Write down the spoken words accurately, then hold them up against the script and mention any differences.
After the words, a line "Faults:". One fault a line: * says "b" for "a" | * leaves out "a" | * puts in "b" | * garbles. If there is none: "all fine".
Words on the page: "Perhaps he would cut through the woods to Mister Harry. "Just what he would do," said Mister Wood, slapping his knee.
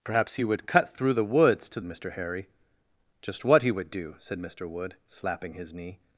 "Perhaps he would cut through the woods to Mister Harry. "Just what he would do," said Mister Wood, slapping his knee.
Faults:
all fine